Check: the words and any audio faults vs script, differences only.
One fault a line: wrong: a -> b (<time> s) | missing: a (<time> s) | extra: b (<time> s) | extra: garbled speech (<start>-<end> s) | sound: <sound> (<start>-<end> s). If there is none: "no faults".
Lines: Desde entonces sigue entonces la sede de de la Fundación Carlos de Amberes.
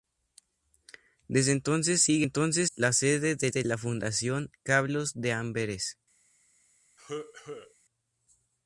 sound: cough (7.0-7.7 s)